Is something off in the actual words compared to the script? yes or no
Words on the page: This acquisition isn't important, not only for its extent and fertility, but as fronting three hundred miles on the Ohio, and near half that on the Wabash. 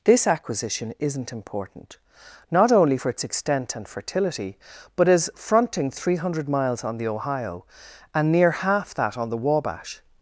no